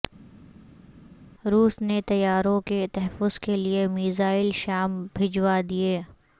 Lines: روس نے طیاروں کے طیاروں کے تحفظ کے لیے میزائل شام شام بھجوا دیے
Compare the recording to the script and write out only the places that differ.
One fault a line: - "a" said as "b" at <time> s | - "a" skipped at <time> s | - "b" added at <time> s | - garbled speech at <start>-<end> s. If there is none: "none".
- "طیاروں کے" skipped at 2.9 s
- "شام" skipped at 5.1 s